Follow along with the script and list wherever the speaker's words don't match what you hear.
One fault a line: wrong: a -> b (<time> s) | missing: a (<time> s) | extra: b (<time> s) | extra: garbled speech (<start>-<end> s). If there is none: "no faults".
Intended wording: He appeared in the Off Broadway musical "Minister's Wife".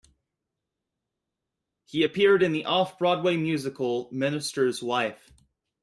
no faults